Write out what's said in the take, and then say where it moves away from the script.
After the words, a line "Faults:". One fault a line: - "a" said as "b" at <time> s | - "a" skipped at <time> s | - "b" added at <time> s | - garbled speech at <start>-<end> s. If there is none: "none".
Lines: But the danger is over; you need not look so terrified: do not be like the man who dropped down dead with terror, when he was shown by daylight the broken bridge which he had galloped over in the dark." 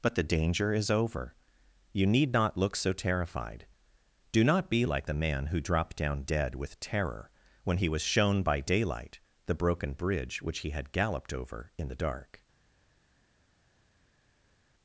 But the danger is over; you need not look so terrified: do not be like the man who dropped down dead with terror, when he was shown by daylight the broken bridge which he had galloped over in the dark."
Faults:
none